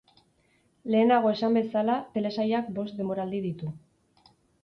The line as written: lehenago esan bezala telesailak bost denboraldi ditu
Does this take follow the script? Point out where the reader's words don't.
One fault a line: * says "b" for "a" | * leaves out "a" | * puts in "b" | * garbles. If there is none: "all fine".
all fine